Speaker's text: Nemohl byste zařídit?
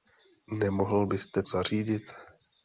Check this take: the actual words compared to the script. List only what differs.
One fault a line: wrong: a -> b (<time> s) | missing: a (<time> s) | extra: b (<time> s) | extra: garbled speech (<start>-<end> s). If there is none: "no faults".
no faults